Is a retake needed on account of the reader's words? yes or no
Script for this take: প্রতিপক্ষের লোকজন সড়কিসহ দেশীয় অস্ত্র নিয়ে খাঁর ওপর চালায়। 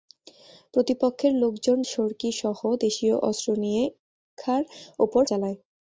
no